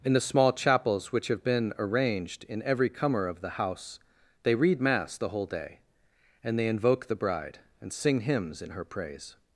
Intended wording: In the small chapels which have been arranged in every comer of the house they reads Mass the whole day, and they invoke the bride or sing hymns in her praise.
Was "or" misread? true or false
true